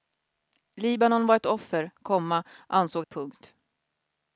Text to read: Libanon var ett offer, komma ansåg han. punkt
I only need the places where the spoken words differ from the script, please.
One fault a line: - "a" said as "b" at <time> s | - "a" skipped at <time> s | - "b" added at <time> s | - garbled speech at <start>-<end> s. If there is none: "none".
- "han" skipped at 3.0 s